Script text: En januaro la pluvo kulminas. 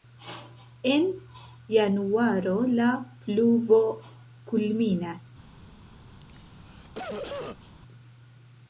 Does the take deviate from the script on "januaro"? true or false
false